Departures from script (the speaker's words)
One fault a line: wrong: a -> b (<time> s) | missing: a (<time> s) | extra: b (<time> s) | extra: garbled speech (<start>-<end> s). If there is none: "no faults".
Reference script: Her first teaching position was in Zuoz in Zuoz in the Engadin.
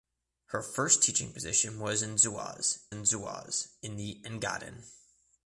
no faults